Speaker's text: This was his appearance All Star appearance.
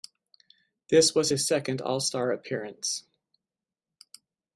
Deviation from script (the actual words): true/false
true